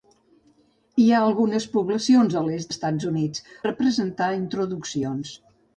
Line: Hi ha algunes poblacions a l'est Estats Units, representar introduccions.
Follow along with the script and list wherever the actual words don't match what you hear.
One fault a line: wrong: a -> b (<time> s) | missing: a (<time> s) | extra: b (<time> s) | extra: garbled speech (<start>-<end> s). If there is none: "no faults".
no faults